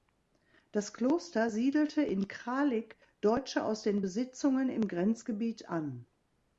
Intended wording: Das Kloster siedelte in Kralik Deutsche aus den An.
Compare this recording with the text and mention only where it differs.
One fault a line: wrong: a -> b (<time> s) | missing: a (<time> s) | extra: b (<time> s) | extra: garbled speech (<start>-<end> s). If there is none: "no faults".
extra: Besitzungen im Grenzgebiet (4.0 s)